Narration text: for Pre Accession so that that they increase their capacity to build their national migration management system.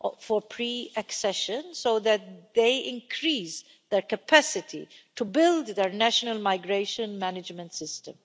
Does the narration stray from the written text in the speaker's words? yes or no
yes